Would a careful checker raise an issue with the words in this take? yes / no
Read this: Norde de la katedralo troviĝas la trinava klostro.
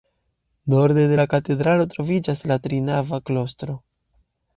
no